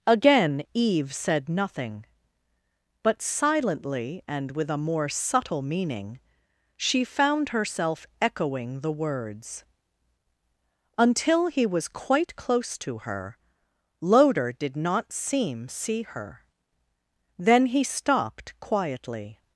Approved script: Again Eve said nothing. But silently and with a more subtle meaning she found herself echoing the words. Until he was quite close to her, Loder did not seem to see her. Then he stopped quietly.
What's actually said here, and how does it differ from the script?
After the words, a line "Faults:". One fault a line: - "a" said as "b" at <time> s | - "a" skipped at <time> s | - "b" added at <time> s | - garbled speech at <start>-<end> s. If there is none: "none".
Again Eve said nothing. But silently and with a more subtle meaning she found herself echoing the words. Until he was quite close to her, Loder did not seem see her. Then he stopped quietly.
Faults:
- "to" skipped at 15.7 s